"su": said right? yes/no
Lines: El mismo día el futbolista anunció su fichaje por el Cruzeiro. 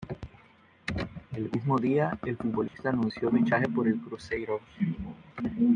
no